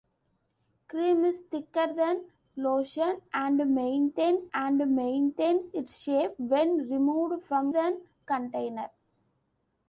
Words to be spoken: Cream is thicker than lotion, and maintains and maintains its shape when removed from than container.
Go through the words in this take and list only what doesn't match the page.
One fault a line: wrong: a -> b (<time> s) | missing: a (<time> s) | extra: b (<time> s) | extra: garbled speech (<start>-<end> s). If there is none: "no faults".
no faults